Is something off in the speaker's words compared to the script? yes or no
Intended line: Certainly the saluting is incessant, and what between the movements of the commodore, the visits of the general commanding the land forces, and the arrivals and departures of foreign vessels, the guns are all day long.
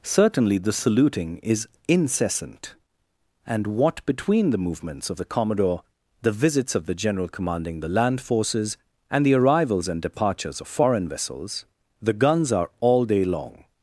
no